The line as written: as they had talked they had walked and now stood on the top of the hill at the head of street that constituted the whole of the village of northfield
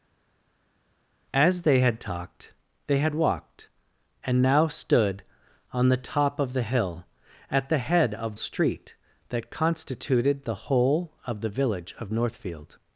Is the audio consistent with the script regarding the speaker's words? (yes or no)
yes